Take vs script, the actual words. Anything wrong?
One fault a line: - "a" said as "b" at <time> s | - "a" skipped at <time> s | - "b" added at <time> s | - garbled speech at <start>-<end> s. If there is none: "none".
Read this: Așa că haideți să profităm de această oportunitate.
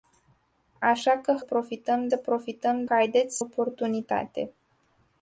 - "haideți" said as "profităm" at 1.4 s
- "această" said as "haideți" at 2.9 s